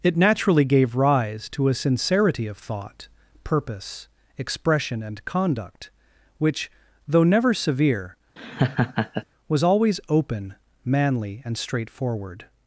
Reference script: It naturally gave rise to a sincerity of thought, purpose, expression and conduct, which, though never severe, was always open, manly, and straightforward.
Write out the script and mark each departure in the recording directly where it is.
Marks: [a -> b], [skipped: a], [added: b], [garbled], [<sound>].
It naturally gave rise to a sincerity of thought, purpose, expression and conduct, which, though never severe, [laugh] was always open, manly, and straightforward.